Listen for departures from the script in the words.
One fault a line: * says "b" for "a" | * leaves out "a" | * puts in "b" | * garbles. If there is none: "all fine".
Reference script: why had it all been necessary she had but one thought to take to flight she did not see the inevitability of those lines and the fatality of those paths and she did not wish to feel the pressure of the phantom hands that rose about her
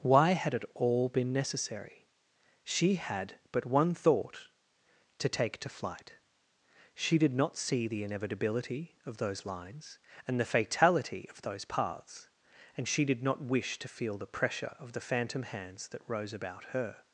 all fine